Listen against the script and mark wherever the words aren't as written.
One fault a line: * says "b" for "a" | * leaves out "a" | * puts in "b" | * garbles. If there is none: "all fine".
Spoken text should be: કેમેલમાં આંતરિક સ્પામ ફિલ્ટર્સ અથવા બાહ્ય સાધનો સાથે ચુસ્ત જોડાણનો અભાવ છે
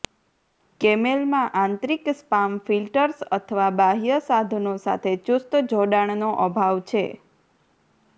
all fine